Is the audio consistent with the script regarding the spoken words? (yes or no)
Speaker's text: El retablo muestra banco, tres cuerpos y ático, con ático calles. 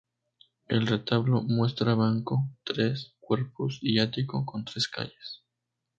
no